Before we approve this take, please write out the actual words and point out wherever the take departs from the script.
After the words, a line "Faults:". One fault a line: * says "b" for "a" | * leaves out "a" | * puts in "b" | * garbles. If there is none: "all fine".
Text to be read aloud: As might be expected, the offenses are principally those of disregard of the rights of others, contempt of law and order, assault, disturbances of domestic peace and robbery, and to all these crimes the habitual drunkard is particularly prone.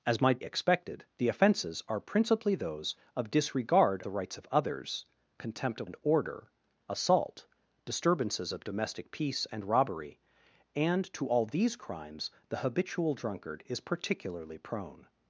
As might expected, the offenses are principally those of disregard the rights of others, contempt of and order, assault, disturbances of domestic peace and robbery, and to all these crimes the habitual drunkard is particularly prone.
Faults:
* leaves out "be"
* leaves out "of"
* leaves out "law"